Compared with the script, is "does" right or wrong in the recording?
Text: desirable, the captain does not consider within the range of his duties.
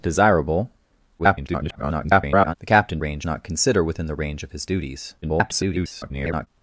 wrong